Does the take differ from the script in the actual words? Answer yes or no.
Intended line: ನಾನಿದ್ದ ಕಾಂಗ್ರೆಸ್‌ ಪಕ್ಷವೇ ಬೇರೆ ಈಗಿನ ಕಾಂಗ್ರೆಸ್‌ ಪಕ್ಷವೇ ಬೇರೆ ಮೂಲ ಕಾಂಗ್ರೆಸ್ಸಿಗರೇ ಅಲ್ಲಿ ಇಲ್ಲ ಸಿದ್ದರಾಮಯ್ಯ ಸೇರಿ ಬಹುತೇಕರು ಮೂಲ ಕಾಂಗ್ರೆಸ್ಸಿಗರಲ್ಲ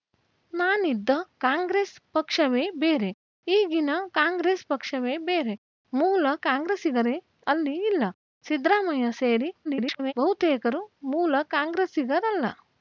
yes